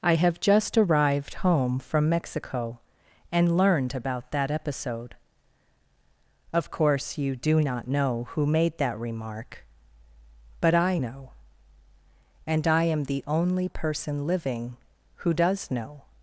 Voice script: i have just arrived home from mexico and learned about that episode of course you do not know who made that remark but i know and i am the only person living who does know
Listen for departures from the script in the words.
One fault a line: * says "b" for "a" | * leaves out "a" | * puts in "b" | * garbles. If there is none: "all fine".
all fine